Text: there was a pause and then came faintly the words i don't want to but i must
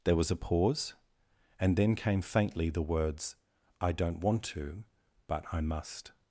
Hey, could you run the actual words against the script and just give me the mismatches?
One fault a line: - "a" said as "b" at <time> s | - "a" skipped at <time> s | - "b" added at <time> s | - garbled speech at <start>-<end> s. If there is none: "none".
none